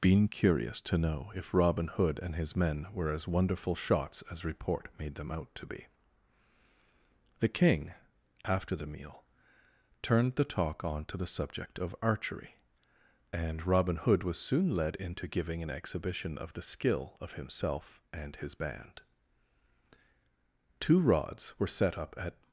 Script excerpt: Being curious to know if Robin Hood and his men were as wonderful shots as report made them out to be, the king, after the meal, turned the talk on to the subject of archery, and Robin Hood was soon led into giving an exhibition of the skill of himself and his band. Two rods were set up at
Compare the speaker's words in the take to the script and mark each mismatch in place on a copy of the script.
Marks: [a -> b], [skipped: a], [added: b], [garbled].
Being curious to know if Robin Hood and his men were as wonderful shots as report made them out to be, the king, after the meal, turned the talk on to the subject of archery, and Robin Hood was soon led into giving an exhibition of the skill of himself and his band. Two rods were set up at